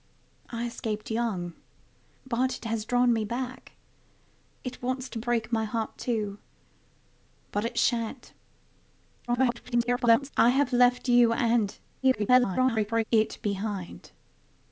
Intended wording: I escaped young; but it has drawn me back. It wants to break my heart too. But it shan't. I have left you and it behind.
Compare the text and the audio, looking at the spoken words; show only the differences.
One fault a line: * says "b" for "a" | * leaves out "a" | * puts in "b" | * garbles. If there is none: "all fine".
* garbles
* garbles